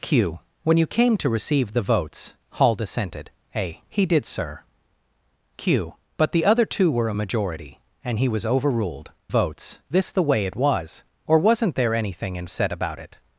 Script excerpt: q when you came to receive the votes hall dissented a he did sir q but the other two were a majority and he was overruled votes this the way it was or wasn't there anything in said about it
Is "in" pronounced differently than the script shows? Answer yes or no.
no